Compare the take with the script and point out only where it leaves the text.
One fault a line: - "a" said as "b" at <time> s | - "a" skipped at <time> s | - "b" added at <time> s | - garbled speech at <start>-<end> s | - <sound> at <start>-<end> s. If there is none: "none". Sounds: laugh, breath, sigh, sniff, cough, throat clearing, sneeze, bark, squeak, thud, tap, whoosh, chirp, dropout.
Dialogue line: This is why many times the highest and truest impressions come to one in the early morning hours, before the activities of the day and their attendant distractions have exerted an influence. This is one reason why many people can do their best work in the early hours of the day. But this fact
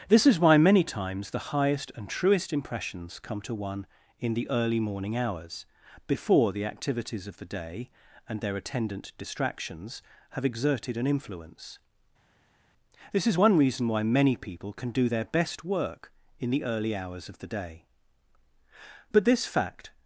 none